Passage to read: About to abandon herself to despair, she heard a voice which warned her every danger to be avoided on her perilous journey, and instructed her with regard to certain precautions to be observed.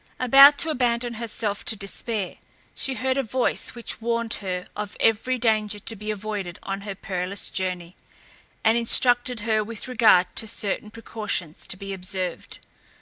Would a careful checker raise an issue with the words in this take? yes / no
yes